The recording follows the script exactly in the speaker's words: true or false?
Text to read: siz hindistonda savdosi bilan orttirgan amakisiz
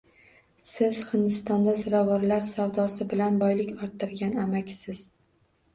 false